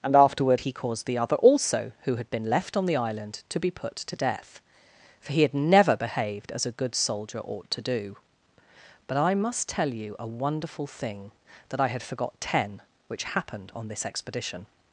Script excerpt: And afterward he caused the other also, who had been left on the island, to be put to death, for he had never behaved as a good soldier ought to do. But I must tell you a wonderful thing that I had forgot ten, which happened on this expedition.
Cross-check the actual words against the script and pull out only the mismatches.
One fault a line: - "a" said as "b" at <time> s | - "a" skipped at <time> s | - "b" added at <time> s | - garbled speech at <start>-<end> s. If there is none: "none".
none